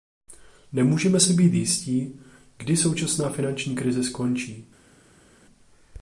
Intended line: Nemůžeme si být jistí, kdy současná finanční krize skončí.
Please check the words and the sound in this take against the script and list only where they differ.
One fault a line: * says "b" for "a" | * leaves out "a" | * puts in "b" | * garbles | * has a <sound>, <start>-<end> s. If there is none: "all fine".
all fine